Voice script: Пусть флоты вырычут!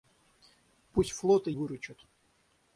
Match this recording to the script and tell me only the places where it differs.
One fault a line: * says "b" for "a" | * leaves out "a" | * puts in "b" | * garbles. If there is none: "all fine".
all fine